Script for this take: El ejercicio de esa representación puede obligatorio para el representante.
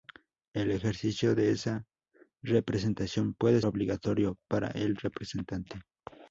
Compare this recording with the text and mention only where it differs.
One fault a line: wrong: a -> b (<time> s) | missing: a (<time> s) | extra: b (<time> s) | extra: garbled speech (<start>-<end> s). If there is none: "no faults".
no faults